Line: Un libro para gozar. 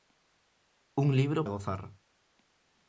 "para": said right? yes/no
no